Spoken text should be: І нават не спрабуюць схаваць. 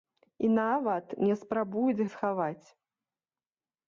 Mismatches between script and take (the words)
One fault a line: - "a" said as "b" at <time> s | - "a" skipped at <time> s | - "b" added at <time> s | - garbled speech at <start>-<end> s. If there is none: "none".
none